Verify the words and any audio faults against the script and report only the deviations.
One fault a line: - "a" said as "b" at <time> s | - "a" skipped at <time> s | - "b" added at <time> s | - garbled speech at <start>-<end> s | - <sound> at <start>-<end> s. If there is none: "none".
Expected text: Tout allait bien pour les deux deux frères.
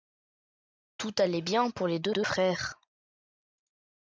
none